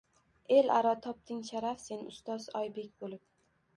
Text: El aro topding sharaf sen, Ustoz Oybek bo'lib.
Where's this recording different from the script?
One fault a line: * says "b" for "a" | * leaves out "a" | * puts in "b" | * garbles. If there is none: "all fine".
all fine